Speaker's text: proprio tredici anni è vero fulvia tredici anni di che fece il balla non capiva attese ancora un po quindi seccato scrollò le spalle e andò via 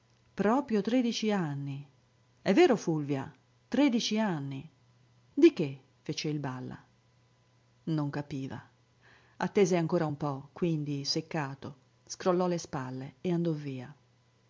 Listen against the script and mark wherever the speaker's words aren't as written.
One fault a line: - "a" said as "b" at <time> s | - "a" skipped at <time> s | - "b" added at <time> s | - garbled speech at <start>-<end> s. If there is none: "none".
none